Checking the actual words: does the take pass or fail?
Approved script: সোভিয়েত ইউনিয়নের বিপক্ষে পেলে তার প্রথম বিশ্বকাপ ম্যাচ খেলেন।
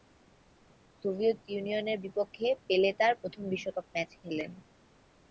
pass